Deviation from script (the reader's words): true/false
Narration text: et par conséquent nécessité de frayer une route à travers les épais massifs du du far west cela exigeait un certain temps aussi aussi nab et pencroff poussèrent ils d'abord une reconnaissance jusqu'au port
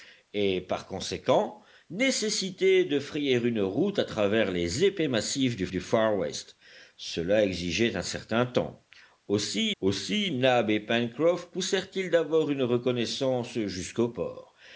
false